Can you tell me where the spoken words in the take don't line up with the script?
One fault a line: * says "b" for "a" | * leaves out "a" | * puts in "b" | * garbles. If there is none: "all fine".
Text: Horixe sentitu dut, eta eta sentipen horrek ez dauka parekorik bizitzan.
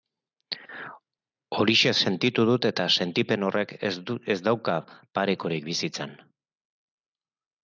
* leaves out "eta"